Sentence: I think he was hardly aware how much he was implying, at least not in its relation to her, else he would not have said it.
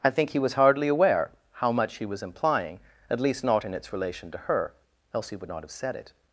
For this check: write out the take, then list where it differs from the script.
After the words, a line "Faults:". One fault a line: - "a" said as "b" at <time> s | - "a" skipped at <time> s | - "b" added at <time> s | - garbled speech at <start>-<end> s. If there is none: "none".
I think he was hardly aware how much he was implying, at least not in its relation to her, else he would not have said it.
Faults:
none